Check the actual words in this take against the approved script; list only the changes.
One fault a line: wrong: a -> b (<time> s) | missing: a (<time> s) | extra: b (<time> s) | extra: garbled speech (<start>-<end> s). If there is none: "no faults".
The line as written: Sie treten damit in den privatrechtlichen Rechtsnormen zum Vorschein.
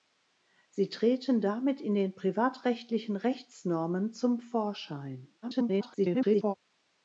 extra: garbled speech (5.4-6.5 s)